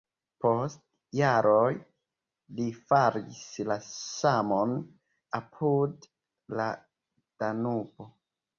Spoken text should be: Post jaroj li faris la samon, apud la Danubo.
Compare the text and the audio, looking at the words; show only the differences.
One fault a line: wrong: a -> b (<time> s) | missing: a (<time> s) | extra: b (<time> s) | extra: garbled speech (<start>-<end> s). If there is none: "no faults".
no faults